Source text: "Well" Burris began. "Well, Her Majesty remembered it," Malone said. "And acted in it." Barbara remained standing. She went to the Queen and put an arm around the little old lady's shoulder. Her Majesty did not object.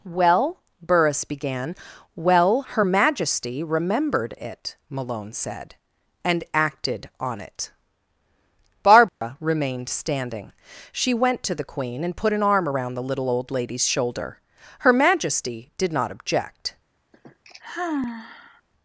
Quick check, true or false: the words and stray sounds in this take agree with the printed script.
false